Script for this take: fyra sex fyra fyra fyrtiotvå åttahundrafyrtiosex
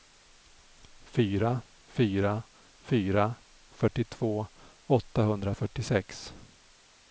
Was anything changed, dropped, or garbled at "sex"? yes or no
yes